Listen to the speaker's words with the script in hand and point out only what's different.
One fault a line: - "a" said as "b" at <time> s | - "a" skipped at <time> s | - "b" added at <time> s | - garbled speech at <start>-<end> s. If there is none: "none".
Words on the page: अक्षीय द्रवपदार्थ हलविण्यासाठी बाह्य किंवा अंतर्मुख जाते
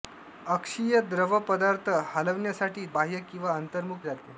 none